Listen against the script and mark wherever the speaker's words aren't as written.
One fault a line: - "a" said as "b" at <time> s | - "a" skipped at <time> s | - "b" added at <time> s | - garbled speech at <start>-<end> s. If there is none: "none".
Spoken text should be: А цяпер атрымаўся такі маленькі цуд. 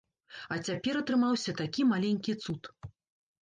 none